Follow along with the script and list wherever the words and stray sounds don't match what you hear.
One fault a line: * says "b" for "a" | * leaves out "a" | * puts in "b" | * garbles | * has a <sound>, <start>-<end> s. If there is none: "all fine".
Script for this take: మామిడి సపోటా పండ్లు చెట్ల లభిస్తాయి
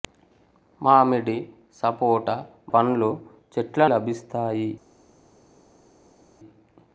all fine